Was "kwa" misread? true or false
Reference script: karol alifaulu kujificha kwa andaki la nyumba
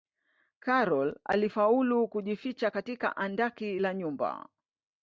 true